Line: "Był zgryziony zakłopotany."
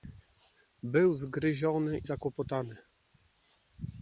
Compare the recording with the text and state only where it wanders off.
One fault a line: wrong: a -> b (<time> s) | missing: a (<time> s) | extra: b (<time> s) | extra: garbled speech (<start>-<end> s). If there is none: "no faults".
no faults